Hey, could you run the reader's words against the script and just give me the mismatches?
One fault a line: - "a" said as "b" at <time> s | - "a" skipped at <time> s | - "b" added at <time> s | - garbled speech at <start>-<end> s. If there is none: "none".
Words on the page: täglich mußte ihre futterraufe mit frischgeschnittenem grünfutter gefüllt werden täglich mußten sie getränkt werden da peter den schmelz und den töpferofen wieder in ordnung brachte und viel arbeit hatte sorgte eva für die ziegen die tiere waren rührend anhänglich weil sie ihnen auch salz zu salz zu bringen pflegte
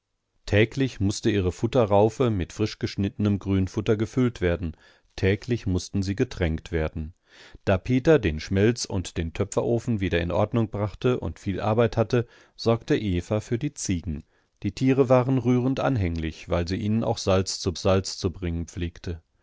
none